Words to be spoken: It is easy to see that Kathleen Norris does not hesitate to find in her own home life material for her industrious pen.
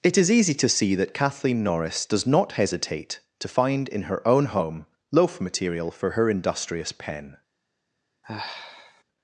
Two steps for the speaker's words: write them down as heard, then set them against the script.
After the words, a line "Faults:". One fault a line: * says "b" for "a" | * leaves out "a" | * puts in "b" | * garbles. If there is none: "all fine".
It is easy to see that Kathleen Norris does not hesitate to find in her own home loaf material for her industrious pen.
Faults:
* says "loaf" for "life"